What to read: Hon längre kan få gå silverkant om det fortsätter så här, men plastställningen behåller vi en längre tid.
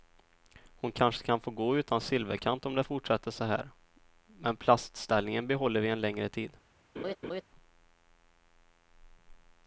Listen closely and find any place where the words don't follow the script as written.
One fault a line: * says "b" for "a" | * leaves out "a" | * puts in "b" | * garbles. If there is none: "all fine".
* says "kanske" for "längre"
* puts in "utan"